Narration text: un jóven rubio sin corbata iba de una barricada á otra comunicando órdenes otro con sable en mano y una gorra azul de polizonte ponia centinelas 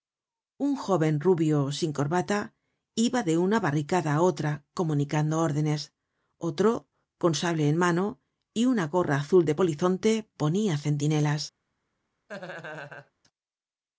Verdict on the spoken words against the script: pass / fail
pass